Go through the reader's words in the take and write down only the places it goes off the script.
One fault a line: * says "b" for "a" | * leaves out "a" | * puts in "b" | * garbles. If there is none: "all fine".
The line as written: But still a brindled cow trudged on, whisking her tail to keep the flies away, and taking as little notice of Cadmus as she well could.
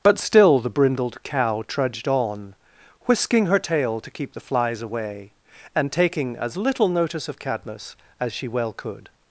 * says "the" for "a"